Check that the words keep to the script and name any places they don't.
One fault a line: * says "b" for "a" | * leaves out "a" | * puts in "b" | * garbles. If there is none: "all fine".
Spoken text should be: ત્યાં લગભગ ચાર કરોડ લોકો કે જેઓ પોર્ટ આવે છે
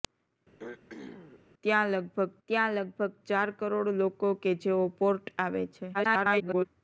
* puts in "ત્યાં લગભગ"
* garbles